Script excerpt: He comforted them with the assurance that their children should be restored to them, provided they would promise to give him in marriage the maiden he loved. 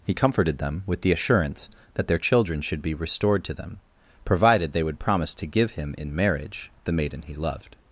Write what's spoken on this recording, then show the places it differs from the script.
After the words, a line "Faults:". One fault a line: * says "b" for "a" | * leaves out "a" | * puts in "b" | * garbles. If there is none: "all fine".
He comforted them with the assurance that their children should be restored to them, provided they would promise to give him in marriage the maiden he loved.
Faults:
all fine